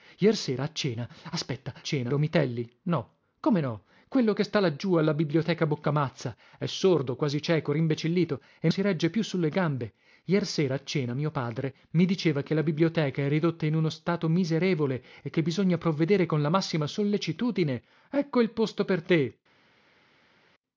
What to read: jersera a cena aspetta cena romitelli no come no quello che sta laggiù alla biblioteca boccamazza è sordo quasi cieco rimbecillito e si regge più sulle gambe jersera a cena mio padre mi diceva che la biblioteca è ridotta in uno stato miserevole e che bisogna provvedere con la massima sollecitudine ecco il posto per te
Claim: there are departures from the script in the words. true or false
false